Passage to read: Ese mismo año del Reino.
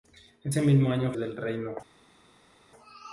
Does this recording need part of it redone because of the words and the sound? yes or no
no